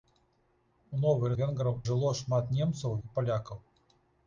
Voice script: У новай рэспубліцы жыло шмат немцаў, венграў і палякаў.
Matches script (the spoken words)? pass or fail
fail